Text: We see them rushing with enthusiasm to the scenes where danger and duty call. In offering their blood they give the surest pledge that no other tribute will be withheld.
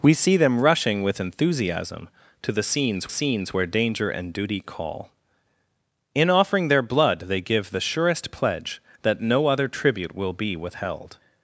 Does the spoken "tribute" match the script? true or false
true